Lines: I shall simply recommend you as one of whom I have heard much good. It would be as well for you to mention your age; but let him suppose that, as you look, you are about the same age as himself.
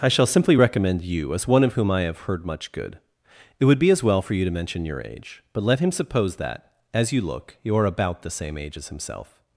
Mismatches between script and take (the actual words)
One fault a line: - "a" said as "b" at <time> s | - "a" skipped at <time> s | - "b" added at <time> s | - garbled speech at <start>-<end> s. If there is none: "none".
none